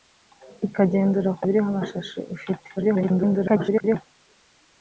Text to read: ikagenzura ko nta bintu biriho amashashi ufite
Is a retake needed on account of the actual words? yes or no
yes